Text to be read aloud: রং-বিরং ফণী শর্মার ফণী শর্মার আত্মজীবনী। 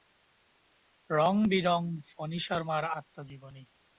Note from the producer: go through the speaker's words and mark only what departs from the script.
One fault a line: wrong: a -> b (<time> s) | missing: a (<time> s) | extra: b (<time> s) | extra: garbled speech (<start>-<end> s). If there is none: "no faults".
missing: ফণী শর্মার (2.8 s)